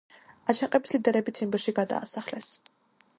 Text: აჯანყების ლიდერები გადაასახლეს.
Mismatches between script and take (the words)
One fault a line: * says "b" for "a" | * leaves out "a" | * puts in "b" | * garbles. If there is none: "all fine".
* puts in "ციმბირში"